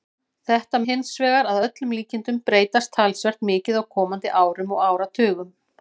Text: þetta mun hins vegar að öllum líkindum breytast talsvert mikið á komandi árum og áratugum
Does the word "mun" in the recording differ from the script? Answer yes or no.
yes